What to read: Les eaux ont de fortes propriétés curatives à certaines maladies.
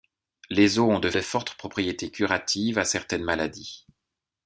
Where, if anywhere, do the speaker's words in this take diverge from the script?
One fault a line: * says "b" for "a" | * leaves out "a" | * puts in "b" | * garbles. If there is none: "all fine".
* puts in "de"